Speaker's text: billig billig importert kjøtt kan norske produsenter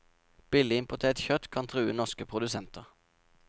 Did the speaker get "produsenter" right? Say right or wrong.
right